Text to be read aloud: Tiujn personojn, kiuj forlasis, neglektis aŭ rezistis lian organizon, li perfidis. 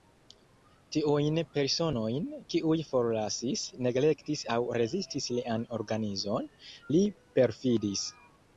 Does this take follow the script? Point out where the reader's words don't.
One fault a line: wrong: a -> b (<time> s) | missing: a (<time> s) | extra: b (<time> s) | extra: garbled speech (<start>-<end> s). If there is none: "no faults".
no faults